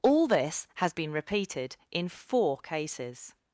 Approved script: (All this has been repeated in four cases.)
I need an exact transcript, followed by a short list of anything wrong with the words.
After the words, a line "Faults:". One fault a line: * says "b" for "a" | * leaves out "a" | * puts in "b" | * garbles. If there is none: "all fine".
(All this has been repeated in four cases.)
Faults:
all fine